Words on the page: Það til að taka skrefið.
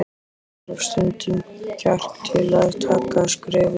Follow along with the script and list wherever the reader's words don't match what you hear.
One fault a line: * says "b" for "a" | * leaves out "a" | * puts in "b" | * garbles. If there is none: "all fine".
* puts in "þarf stundum kjark"